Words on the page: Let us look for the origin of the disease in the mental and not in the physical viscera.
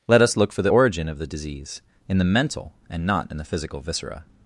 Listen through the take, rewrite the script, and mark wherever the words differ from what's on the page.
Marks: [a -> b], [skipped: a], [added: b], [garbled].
Let us look for the origin of the disease in the mental and not in the physical viscera.